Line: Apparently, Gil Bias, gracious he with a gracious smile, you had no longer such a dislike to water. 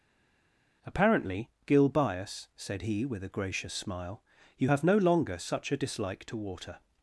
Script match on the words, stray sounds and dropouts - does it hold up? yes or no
no